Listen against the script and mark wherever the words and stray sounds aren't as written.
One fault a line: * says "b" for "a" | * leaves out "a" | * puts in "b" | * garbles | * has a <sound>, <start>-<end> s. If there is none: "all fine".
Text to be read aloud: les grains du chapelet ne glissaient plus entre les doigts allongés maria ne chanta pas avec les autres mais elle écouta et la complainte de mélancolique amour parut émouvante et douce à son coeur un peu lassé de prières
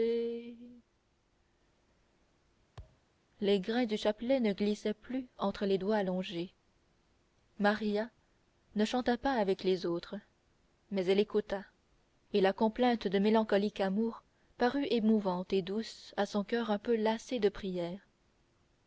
* has a thud, 2.8-3.1 s